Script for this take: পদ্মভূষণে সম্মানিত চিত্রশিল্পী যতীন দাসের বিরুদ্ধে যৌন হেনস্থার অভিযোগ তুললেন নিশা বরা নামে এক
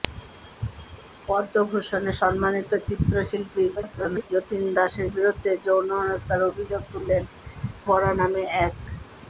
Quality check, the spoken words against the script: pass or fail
fail